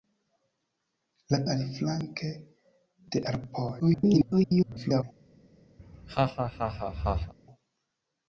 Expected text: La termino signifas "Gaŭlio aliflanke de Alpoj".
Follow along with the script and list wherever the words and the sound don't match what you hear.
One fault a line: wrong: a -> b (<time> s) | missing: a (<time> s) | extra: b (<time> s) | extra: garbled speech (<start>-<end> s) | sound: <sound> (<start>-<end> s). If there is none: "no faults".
missing: termino signifas Gaŭlio (1.4 s)
extra: garbled speech (3.8-5.0 s)
sound: laugh (5.8-7.3 s)